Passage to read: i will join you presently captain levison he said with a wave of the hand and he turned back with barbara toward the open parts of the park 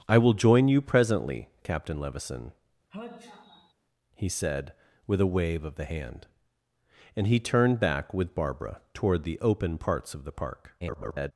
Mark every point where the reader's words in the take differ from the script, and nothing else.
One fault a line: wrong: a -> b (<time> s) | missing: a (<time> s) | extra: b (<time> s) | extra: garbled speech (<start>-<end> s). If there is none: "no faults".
extra: garbled speech (10.8-11.3 s)